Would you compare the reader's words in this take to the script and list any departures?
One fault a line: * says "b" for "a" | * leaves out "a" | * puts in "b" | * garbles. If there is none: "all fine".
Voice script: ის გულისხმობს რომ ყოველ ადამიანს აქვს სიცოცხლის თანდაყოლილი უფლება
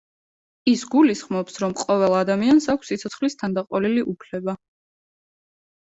all fine